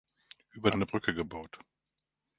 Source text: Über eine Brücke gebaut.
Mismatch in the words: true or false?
false